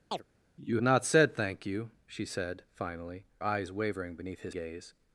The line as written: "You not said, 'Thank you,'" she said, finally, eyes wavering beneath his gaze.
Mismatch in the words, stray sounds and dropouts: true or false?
true